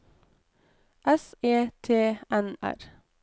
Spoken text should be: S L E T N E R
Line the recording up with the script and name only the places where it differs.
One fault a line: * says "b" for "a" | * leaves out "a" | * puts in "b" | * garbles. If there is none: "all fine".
* leaves out "L"
* leaves out "E"